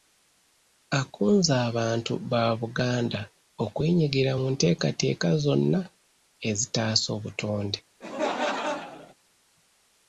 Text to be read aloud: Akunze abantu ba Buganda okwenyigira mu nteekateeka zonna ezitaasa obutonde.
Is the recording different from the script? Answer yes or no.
no